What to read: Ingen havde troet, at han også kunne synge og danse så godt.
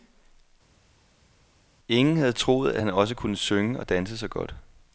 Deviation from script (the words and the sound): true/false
false